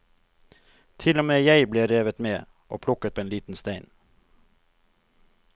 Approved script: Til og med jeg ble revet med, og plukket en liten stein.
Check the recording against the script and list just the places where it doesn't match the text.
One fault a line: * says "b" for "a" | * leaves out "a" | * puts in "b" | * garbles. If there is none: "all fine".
all fine